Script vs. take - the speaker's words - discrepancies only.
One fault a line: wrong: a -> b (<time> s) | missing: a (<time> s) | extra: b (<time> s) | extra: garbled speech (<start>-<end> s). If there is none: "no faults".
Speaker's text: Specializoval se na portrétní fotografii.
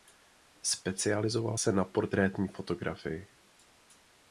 no faults